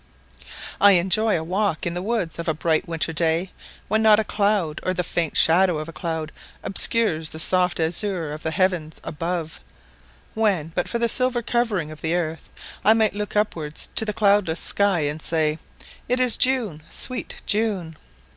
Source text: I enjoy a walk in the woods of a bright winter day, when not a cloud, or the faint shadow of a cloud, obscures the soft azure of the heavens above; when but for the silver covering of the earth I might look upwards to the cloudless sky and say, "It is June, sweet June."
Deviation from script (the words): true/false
false